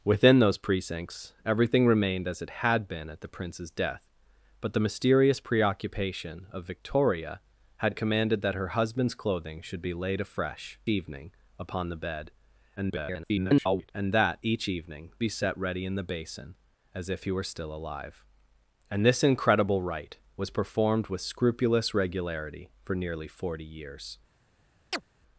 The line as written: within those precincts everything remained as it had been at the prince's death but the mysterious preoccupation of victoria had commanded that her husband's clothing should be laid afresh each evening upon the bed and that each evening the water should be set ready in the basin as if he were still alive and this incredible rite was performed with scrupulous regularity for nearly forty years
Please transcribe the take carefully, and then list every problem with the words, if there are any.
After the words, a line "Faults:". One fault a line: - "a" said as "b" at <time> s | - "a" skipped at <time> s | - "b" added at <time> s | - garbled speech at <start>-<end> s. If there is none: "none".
within those precincts everything remained as it had been at the prince's death but the mysterious preoccupation of victoria had commanded that her husband's clothing should be laid afresh evening upon the bed [garbled] and that each evening be set ready in the basin as if he were still alive and this incredible rite was performed with scrupulous regularity for nearly forty years
Faults:
- "each" skipped at 10.8 s
- garbled speech at 12.8-13.9 s
- "the water should" skipped at 15.1 s